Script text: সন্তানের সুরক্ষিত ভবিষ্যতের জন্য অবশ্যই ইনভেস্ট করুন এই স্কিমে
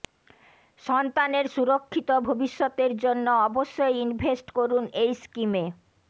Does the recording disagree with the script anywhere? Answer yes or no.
no